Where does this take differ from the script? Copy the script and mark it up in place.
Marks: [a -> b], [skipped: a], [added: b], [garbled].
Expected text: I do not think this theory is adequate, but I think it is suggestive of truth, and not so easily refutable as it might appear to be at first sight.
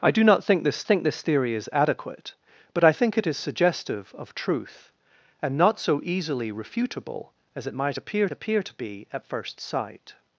I do not think this [added: think this] theory is adequate, but I think it is suggestive of truth, and not so easily refutable as it might appear [added: appear] to be at first sight.